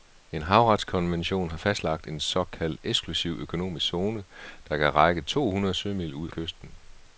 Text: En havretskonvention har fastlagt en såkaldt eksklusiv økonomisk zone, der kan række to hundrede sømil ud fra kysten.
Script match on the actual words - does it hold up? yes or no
no